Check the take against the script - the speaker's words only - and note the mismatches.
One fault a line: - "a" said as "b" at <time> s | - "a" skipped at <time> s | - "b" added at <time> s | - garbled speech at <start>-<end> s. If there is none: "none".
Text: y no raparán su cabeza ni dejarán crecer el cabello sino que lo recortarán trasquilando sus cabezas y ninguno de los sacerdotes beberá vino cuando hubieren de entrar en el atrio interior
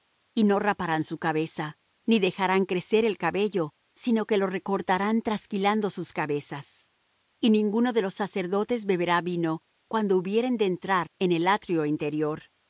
none